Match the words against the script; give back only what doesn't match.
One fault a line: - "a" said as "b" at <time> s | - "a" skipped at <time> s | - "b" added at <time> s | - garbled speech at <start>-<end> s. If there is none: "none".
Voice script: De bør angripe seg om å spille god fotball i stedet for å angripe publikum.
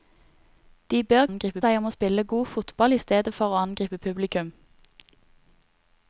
none